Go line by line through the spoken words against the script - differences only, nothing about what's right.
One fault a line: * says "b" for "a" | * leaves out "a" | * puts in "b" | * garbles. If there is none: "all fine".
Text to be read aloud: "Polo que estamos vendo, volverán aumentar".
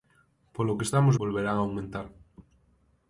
* leaves out "vendo"